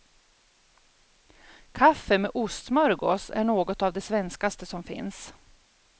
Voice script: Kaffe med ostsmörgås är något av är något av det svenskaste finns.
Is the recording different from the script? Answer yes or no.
yes